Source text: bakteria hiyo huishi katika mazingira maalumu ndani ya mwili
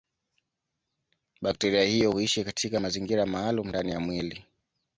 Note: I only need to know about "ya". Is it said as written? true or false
true